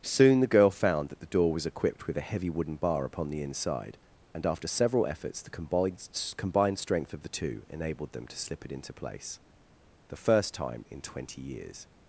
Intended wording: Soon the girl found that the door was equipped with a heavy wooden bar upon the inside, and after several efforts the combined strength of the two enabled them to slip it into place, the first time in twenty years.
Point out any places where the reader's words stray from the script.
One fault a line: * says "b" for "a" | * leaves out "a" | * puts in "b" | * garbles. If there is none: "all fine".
* puts in "combined"